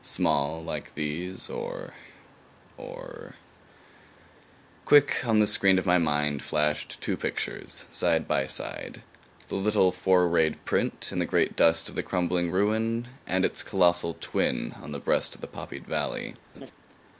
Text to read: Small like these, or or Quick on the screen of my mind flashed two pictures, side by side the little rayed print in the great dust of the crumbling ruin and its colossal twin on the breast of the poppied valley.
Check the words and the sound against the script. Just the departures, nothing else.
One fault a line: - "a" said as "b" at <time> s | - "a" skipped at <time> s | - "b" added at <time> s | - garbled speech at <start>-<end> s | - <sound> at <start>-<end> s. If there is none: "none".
- "four" added at 9.9 s
- laugh at 16.5-16.7 s